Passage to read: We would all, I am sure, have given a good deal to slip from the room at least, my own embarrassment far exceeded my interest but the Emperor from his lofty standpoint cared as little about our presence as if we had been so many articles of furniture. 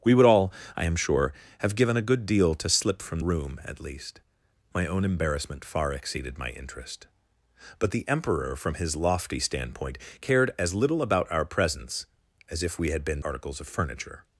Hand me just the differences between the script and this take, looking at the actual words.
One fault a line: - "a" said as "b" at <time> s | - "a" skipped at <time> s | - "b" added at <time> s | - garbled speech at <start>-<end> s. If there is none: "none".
- "the" skipped at 3.2 s
- "so many" skipped at 13.2 s